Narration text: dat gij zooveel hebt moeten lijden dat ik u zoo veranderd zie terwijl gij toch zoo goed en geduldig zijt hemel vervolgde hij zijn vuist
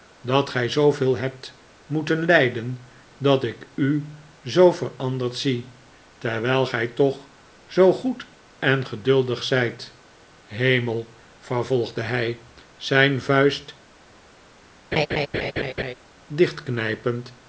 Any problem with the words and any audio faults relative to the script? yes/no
yes